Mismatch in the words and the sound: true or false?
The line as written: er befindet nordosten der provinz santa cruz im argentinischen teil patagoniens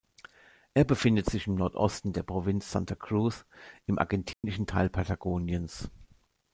true